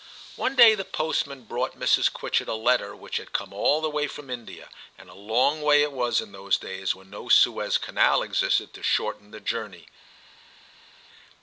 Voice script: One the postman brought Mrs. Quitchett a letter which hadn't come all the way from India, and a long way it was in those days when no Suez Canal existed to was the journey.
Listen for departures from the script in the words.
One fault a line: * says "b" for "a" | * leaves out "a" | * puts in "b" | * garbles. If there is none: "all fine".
* puts in "day"
* says "had" for "hadn't"
* says "shorten" for "was"